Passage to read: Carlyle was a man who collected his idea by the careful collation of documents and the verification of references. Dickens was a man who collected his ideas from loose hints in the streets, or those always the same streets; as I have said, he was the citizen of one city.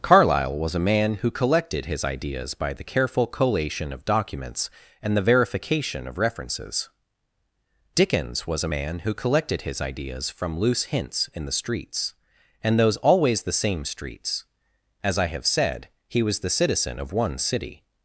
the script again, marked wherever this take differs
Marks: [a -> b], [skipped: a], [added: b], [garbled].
Carlyle was a man who collected his [idea -> ideas] by the careful collation of documents and the verification of references. Dickens was a man who collected his ideas from loose hints in the streets, [or -> and] those always the same streets; as I have said, he was the citizen of one city.